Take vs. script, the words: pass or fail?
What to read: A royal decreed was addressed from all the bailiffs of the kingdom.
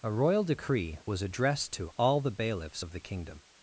fail